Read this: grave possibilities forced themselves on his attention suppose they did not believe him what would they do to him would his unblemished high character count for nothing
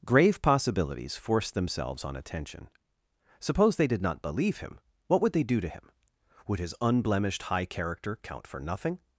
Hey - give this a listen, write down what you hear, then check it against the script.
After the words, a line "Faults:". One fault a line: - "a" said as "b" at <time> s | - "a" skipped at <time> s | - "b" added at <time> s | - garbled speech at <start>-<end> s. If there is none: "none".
grave possibilities forced themselves on attention suppose they did not believe him what would they do to him would his unblemished high character count for nothing
Faults:
- "his" skipped at 2.1 s